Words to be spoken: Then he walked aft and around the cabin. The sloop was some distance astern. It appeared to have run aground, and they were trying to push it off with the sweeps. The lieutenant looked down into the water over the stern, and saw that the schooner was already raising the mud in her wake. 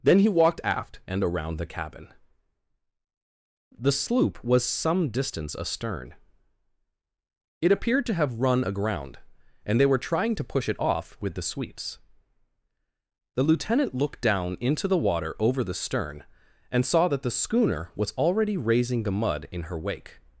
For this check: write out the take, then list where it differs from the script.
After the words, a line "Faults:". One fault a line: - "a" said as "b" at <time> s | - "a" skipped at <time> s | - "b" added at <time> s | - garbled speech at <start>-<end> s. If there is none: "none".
Then he walked aft and around the cabin. The sloop was some distance astern. It appeared to have run aground, and they were trying to push it off with the sweeps. The lieutenant looked down into the water over the stern, and saw that the schooner was already raising the mud in her wake.
Faults:
none